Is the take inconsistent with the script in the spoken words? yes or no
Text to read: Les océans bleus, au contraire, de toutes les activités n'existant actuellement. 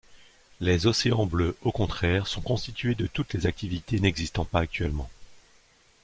yes